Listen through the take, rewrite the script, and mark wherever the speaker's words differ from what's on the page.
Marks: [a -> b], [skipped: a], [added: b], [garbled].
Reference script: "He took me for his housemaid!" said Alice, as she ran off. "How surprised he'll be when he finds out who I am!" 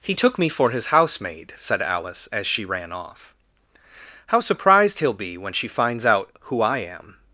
"He took me for his housemaid!" said Alice, as she ran off. "How surprised he'll be when [he -> she] finds out who I am!"